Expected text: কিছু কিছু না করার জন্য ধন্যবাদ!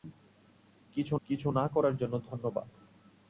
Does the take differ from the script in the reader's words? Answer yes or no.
no